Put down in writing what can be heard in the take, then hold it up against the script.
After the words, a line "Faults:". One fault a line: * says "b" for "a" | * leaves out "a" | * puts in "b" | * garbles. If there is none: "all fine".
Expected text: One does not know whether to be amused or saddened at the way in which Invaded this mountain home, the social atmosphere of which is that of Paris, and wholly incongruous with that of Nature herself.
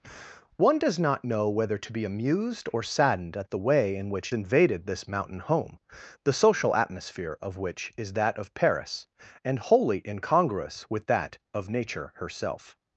One does not know whether to be amused or saddened at the way in which Invaded this mountain home, the social atmosphere of which is that of Paris, and wholly incongruous with that of Nature herself.
Faults:
all fine